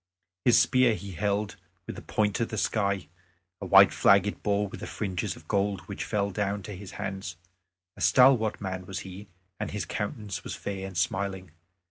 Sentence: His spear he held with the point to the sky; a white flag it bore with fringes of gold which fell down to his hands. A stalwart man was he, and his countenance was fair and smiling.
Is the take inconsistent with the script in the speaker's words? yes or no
no